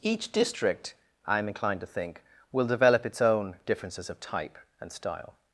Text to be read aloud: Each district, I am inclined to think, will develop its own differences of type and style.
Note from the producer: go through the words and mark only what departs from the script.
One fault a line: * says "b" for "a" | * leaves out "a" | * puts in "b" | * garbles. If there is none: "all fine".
all fine